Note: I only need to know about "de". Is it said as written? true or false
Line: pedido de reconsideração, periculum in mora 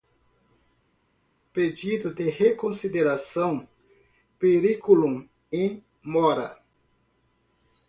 true